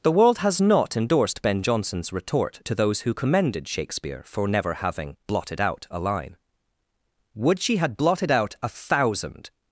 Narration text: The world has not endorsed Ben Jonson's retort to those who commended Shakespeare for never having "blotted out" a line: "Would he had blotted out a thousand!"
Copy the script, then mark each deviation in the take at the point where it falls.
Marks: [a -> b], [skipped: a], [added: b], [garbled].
The world has not endorsed Ben Jonson's retort to those who commended Shakespeare for never having "blotted out" a line: "Would [he -> she] had blotted out a thousand!"